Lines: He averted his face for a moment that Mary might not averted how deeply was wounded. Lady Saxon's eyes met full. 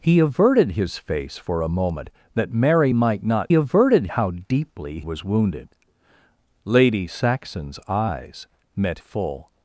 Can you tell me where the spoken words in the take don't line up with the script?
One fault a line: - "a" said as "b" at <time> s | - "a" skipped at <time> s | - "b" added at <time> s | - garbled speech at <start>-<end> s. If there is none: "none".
none